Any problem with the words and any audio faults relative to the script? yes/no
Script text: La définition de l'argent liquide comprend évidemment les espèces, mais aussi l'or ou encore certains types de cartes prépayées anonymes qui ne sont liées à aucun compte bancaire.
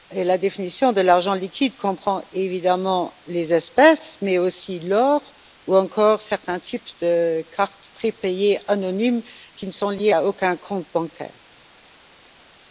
no